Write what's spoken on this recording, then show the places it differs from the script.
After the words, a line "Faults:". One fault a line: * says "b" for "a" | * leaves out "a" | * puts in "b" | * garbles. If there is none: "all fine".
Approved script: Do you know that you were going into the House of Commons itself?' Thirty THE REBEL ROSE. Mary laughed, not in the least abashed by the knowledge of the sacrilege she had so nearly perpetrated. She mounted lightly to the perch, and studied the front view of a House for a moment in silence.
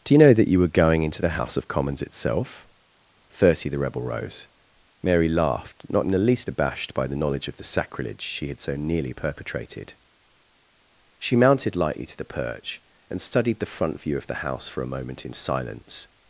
Do you know that you were going into the House of Commons itself?' Thirty THE REBEL ROSE. Mary laughed, not in the least abashed by the knowledge of the sacrilege she had so nearly perpetrated. She mounted lightly to the perch, and studied the front view of the House for a moment in silence.
Faults:
* says "the" for "a"